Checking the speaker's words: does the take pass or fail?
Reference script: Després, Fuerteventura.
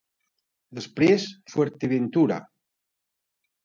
pass